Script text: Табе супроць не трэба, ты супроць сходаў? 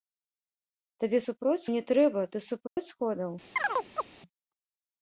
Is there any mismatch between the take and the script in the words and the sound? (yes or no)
yes